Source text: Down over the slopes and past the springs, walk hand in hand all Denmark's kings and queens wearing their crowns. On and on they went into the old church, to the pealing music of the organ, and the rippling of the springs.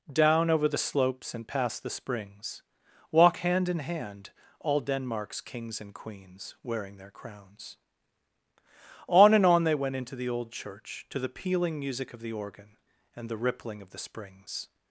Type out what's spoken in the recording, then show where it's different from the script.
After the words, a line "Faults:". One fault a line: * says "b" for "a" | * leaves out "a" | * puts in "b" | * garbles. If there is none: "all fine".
Down over the slopes and past the springs, walk hand in hand all Denmark's kings and queens wearing their crowns. On and on they went into the old church, to the pealing music of the organ, and the rippling of the springs.
Faults:
all fine